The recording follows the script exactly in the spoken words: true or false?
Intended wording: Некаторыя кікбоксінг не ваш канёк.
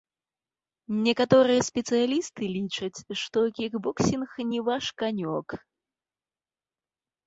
false